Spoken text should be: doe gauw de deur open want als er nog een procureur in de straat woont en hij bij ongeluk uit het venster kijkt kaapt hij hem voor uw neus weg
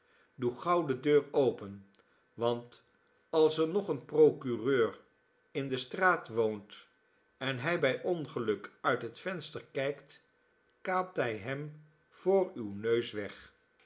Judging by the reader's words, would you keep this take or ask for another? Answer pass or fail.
pass